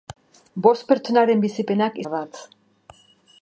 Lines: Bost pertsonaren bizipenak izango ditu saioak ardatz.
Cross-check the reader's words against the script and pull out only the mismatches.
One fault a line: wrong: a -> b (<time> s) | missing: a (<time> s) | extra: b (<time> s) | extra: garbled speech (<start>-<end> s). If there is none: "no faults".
missing: izango ditu saioak (2.0 s)